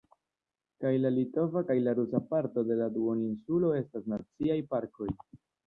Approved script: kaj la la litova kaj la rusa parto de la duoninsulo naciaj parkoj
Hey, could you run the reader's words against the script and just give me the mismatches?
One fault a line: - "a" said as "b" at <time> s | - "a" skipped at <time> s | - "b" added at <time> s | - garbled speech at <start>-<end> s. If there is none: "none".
- "la" skipped at 1.1 s
- "estas" added at 3.8 s